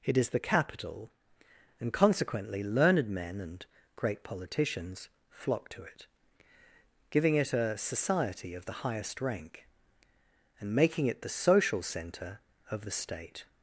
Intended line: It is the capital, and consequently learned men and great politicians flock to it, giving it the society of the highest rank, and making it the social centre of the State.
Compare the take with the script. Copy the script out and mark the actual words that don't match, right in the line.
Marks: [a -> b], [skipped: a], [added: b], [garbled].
It is the capital, and consequently learned men and great politicians flock to it, giving it [the -> a] society of the highest rank, and making it the social centre of the State.